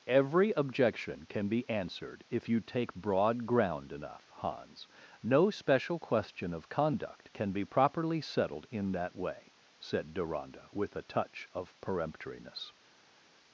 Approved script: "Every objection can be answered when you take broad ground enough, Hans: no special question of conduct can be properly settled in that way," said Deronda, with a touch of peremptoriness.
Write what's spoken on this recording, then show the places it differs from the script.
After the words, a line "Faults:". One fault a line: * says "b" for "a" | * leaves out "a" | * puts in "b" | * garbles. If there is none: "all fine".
"Every objection can be answered if you take broad ground enough, Hans: no special question of conduct can be properly settled in that way," said Deronda, with a touch of peremptoriness.
Faults:
* says "if" for "when"